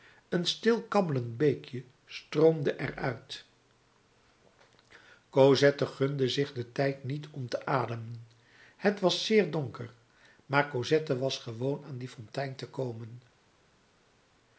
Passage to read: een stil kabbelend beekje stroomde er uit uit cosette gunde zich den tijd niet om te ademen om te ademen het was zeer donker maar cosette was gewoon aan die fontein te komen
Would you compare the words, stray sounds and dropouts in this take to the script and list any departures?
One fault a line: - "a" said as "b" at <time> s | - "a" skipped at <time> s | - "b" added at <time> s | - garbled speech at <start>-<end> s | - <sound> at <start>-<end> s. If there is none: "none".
- "uit" skipped at 3.5 s
- "om te ademen" skipped at 8.3 s